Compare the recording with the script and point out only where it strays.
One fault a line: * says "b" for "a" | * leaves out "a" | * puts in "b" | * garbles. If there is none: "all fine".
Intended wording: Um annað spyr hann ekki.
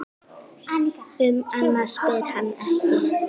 all fine